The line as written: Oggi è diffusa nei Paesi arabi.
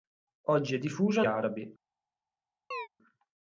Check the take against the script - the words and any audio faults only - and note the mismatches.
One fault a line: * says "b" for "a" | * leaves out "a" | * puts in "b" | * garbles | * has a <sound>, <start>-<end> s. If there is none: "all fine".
* leaves out "nei Paesi"
* has a chirp, 2.7-2.9 s